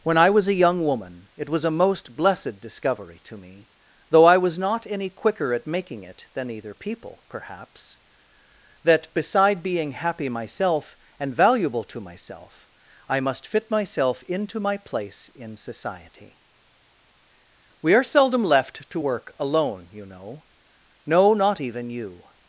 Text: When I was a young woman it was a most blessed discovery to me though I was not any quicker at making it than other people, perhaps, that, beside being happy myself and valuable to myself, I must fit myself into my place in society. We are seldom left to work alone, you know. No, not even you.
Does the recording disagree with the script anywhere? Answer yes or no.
yes